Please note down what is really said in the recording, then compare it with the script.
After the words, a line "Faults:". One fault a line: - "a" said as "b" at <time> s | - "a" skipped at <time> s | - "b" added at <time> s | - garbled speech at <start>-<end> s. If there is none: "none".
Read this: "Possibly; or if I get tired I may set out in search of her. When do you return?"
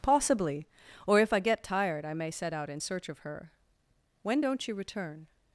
"Possibly; or if I get tired I may set out in search of her. When don't you return?"
Faults:
- "do" said as "don't" at 4.4 s